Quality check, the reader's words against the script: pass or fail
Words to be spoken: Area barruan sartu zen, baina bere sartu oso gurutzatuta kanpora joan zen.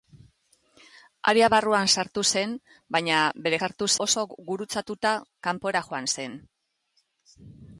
pass